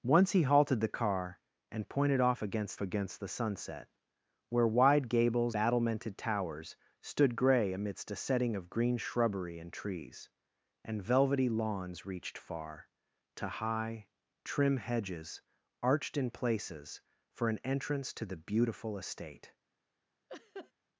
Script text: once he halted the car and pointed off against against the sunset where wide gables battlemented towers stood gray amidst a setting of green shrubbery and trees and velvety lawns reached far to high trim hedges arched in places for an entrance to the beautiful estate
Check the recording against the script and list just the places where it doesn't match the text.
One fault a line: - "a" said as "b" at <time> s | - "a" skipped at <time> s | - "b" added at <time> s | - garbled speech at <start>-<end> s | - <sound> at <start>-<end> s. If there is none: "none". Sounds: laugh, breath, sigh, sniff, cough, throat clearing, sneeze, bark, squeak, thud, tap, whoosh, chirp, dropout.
- laugh at 20.3-20.7 s